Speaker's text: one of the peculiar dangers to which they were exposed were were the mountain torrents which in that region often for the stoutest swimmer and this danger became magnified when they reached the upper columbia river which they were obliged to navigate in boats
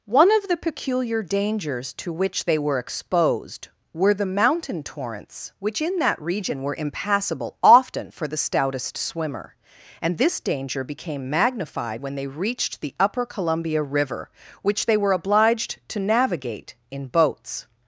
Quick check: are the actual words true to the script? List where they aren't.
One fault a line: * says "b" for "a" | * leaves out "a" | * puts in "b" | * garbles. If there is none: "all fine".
* leaves out "were"
* puts in "were impassable"